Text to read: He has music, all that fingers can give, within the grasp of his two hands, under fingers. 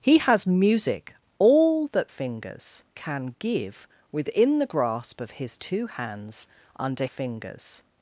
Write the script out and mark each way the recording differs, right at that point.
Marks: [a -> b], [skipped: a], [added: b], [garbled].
He has music, all that fingers can give, within the grasp of his two hands, under fingers.